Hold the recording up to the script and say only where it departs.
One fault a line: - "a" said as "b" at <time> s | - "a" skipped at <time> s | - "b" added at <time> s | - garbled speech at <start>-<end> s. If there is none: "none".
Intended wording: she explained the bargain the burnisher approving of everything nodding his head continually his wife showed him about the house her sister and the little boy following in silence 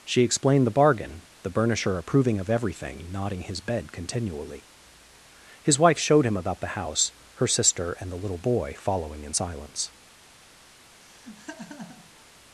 - "head" said as "bed" at 3.6 s